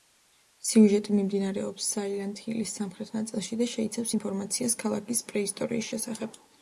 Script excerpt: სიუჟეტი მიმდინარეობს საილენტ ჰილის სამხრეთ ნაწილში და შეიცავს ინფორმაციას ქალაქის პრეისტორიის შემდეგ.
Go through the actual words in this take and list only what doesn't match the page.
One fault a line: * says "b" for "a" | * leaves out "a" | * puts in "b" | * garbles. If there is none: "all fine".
* says "შესახებ" for "შემდეგ"